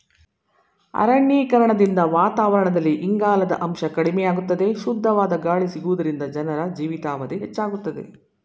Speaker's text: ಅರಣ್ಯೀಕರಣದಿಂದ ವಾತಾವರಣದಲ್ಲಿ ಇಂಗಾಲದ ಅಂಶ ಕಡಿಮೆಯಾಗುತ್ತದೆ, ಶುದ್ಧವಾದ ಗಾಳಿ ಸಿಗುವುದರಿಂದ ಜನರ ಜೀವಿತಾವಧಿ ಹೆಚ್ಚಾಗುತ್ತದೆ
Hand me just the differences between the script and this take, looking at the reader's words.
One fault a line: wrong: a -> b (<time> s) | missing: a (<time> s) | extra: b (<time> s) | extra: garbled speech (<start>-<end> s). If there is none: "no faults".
no faults